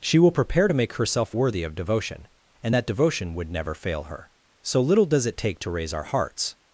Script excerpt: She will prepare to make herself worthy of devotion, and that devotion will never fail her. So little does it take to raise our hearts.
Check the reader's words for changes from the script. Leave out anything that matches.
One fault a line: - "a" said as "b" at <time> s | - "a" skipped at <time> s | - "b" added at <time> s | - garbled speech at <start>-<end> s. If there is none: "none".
- "will" said as "would" at 3.3 s